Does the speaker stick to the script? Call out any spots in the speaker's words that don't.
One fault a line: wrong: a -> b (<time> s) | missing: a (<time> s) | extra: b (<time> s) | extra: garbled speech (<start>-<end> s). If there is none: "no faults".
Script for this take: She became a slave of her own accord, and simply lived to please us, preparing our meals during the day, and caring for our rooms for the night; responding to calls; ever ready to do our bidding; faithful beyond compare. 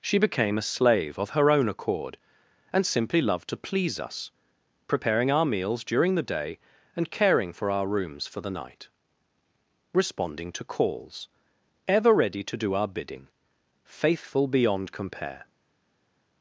wrong: lived -> loved (3.2 s)